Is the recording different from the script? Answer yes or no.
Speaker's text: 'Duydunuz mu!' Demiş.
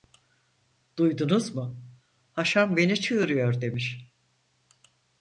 yes